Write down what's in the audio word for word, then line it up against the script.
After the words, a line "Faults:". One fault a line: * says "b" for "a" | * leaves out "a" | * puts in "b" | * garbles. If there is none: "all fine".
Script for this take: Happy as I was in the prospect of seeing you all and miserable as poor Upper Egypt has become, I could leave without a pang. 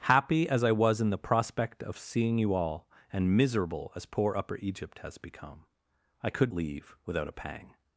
Happy as I was in the prospect of seeing you all and miserable as poor Upper Egypt has become, I could leave without a pang.
Faults:
all fine